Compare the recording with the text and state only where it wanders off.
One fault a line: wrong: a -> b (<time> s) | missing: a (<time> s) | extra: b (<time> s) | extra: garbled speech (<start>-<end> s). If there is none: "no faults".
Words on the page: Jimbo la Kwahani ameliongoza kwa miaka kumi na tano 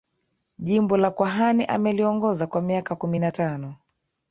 no faults